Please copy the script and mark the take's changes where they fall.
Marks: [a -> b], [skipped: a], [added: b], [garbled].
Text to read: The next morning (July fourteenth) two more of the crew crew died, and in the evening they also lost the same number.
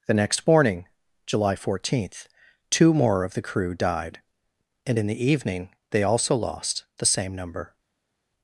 The next morning (July fourteenth) two more of the crew [skipped: crew] died, and in the evening they also lost the same number.